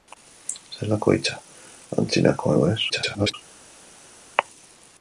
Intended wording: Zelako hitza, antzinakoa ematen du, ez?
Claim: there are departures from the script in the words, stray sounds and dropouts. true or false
true